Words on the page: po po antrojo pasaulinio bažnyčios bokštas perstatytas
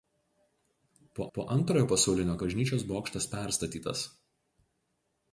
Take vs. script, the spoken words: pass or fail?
pass